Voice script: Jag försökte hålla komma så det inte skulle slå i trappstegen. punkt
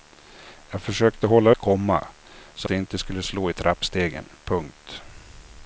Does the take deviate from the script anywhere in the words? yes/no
no